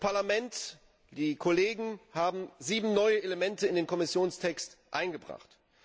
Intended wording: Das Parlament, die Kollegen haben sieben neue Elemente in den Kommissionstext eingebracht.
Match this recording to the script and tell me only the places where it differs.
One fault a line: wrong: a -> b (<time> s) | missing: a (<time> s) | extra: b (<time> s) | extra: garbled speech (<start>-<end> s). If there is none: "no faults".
no faults